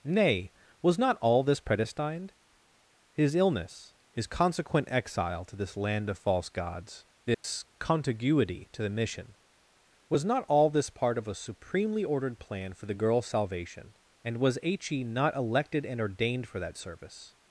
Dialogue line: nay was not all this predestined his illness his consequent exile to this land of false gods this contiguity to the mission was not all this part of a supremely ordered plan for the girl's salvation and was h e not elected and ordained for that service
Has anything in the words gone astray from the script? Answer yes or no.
no